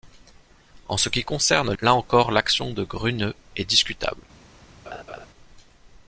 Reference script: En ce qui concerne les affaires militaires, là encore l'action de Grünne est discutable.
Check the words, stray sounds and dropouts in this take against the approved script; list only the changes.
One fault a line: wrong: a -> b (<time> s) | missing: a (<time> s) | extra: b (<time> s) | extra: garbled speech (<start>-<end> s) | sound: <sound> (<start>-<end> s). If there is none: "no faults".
missing: les affaires militaires (1.7 s)
sound: laugh (4.9-5.3 s)